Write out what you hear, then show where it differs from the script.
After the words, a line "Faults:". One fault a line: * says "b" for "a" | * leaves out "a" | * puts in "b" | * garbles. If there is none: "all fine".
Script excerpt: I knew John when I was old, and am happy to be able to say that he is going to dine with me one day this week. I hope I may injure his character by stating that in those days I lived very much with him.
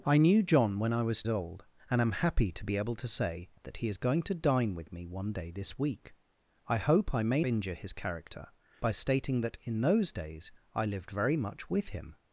I knew John when I was old, and am happy to be able to say that he is going to dine with me one day this week. I hope I may injure his character by stating that in those days I lived very much with him.
Faults:
all fine